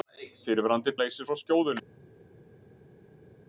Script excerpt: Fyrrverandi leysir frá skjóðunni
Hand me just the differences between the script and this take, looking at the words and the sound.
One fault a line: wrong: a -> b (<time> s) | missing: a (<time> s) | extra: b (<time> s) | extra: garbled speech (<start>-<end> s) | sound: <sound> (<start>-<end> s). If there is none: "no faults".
no faults